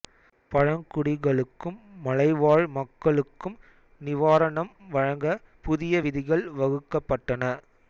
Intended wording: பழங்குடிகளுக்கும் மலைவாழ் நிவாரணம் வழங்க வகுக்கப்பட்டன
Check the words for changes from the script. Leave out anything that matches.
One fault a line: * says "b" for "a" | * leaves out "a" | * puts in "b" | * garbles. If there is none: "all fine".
* puts in "மக்களுக்கும்"
* puts in "புதிய விதிகள்"